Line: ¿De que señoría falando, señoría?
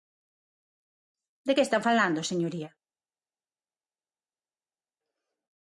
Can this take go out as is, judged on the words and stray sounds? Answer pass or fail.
fail